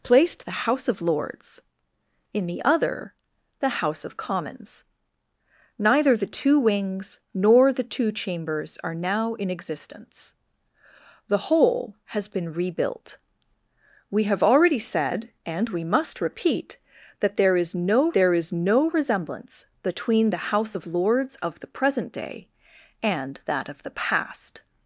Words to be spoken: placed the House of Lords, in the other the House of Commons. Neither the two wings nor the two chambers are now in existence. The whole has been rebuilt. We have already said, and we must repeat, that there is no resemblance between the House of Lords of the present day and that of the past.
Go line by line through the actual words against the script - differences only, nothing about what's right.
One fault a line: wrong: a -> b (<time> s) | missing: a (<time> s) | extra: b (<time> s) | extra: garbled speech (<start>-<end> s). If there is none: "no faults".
extra: there is no (18.1 s)